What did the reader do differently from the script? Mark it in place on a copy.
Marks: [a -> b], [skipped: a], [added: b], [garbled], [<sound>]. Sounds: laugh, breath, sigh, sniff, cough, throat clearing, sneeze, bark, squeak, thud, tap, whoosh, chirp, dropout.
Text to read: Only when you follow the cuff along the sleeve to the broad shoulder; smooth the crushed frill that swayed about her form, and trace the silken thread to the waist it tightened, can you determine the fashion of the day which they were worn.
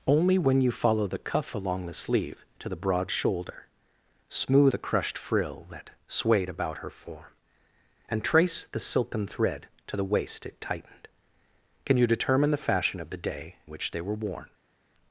Only when you follow the cuff along the sleeve to the broad shoulder; smooth the crushed frill that swayed about her form, and trace the silken thread to the waist it tightened, can you determine the fashion of the day which they were worn.